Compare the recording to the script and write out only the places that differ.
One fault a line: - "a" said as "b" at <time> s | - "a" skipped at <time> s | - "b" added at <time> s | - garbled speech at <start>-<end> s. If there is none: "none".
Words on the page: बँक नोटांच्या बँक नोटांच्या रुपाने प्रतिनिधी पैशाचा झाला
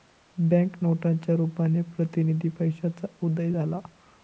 - "बँक नोटांच्या" skipped at 1.3 s
- "उदय" added at 3.2 s